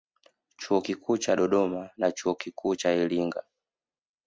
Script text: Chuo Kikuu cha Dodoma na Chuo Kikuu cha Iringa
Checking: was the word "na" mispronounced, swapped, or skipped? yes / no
no